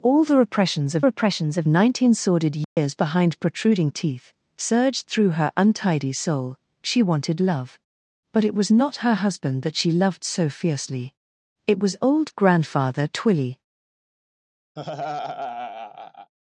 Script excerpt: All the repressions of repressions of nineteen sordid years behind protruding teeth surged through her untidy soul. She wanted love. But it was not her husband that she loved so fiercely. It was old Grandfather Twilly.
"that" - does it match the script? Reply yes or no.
yes